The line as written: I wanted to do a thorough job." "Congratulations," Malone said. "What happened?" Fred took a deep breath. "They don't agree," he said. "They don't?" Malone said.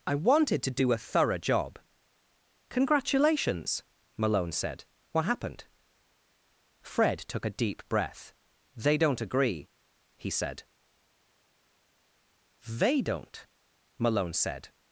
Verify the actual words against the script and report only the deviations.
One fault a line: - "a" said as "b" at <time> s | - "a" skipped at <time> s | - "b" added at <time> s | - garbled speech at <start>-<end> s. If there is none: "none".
none